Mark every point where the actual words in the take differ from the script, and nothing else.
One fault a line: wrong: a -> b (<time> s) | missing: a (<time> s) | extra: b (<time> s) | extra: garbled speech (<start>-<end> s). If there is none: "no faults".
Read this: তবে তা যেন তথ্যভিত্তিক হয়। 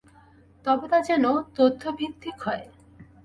no faults